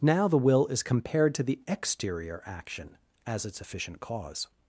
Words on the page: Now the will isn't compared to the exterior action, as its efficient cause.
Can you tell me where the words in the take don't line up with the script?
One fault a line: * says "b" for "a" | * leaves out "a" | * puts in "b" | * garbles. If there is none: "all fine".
* says "is" for "isn't"